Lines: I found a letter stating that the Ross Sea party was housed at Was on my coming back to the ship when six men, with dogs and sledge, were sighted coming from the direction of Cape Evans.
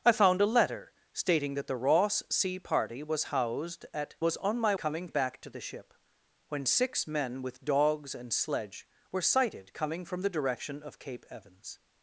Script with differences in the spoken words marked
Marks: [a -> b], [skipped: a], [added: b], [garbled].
I found a letter stating that the Ross Sea party was housed at Was on my coming back to the ship when six men, with dogs and sledge, were sighted coming from the direction of Cape Evans.